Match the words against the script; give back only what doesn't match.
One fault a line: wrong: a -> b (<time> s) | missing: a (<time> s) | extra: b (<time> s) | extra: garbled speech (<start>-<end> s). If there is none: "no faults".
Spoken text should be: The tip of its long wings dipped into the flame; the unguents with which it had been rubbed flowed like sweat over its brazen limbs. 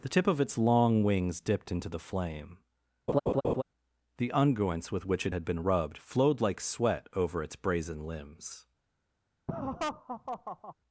no faults